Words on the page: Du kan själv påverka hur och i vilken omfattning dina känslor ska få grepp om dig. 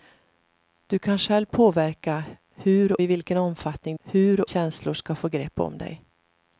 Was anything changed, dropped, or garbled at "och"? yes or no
yes